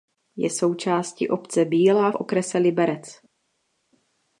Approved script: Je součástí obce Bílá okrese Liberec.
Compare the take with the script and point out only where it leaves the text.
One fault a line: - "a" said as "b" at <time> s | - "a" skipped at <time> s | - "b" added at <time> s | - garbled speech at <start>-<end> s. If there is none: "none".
none